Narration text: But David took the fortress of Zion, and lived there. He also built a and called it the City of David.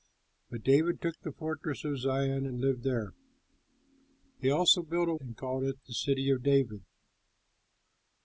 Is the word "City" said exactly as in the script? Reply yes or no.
yes